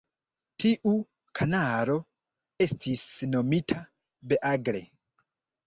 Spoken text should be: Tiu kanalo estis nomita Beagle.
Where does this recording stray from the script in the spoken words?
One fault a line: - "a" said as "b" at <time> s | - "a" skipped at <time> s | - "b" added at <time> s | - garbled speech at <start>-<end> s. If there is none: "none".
none